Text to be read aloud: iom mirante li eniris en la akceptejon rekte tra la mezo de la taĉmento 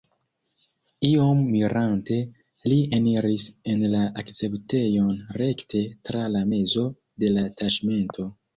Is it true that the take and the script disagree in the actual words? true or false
false